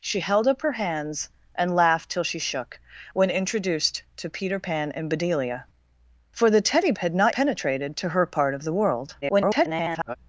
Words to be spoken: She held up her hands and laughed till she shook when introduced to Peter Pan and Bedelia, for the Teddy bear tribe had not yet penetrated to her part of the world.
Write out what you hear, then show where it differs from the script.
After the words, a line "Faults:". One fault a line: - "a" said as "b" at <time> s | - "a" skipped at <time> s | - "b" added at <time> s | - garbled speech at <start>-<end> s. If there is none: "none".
She held up her hands and laughed till she shook when introduced to Peter Pan and Bedelia, for the Teddy had not penetrated to her part of the world. [garbled]
Faults:
- "bear tribe" skipped at 6.9 s
- "yet" skipped at 7.3 s
- garbled speech at 9.2-10.2 s